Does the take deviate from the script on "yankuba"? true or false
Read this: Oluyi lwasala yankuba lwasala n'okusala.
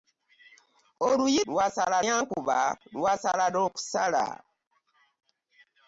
false